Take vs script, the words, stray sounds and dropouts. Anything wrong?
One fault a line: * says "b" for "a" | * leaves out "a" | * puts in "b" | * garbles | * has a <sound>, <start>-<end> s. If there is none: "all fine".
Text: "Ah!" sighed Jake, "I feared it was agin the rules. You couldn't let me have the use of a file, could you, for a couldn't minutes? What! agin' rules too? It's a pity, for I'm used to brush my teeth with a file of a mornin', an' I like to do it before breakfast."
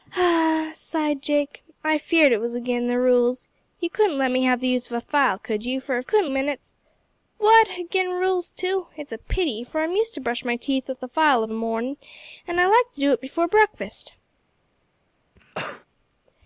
* has a cough, 15.4-15.9 s